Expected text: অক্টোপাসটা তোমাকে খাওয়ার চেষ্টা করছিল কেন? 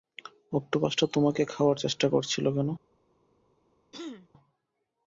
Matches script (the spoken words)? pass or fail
pass